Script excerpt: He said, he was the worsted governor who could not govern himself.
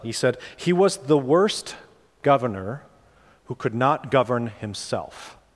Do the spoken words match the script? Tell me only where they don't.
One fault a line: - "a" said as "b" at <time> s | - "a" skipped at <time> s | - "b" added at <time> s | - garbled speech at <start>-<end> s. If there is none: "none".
- "worsted" said as "worst" at 1.2 s